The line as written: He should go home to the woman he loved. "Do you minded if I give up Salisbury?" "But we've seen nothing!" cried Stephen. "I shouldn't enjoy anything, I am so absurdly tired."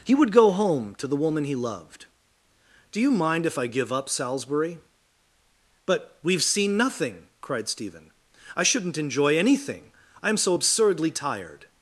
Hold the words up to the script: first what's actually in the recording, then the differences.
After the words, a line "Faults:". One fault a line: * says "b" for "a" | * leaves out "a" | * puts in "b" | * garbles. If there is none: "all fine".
He would go home to the woman he loved. "Do you mind if I give up Salisbury?" "But we've seen nothing!" cried Stephen. "I shouldn't enjoy anything, I am so absurdly tired."
Faults:
* says "would" for "should"
* says "mind" for "minded"